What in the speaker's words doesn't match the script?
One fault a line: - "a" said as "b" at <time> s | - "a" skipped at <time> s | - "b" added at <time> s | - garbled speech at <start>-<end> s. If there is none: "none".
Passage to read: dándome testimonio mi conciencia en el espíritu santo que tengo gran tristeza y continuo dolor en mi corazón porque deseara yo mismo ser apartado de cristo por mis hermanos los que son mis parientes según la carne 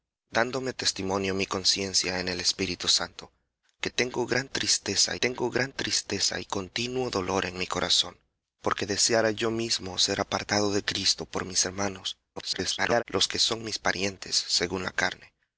- "tengo gran tristeza" added at 5.2 s
- garbled speech at 12.4-13.0 s